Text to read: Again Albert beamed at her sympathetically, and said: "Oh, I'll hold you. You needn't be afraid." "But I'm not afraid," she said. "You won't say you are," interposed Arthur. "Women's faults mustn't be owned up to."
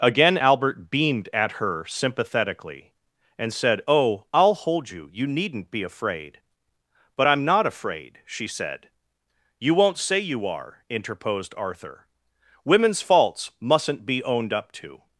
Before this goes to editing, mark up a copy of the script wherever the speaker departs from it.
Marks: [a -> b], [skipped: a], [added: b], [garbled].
Again Albert beamed at her sympathetically, and said: "Oh, I'll hold you. You needn't be afraid." "But I'm not afraid," she said. "You won't say you are," interposed Arthur. "Women's faults mustn't be owned up to."